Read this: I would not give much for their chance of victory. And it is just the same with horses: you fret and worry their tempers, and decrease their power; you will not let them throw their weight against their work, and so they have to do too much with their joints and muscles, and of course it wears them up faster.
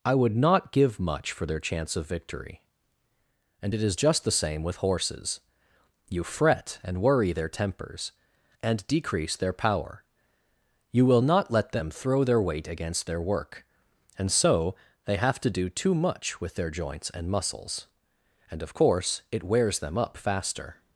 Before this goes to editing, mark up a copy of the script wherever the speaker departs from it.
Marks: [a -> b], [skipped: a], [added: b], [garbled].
I would not give much for their chance of victory. And it is just the same with horses: you fret and worry their tempers, and decrease their power; you will not let them throw their weight against their work, and so they have to do too much with their joints and muscles, and of course it wears them up faster.